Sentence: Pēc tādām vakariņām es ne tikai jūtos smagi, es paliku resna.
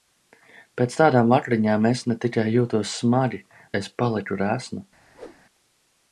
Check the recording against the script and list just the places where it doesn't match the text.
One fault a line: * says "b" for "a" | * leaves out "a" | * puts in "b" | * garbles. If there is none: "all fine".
all fine